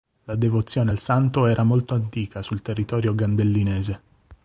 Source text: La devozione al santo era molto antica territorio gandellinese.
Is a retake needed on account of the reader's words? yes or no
yes